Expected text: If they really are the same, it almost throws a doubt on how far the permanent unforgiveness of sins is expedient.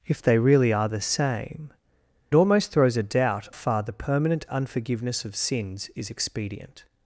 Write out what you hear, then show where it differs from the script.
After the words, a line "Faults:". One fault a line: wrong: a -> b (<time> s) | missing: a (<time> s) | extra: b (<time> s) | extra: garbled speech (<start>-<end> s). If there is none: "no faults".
If they really are the same, almost throws a doubt far the permanent unforgiveness of sins is expedient.
Faults:
missing: it (1.7 s)
missing: on how (3.5 s)